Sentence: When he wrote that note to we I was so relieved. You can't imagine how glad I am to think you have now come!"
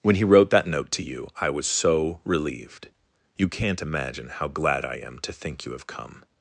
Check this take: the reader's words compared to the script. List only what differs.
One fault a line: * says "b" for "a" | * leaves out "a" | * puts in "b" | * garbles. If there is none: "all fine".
* says "you" for "we"
* leaves out "now"